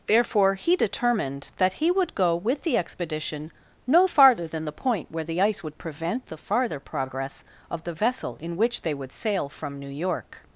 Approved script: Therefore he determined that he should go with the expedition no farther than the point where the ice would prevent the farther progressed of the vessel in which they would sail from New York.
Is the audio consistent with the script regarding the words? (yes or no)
no